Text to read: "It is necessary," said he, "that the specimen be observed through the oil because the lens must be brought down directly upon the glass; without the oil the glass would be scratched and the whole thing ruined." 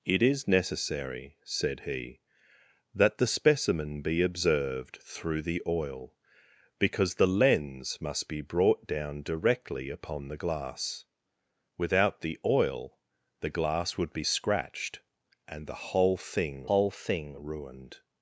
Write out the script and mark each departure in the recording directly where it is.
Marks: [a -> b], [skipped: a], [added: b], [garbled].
"It is necessary," said he, "that the specimen be observed through the oil because the lens must be brought down directly upon the glass; without the oil the glass would be scratched and the whole thing [added: whole thing] ruined."